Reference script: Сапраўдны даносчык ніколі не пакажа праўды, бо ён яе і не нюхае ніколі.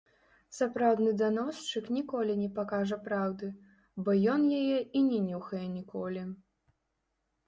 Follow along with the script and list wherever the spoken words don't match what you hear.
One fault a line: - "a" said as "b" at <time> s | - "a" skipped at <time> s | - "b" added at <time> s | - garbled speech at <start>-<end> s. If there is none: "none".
none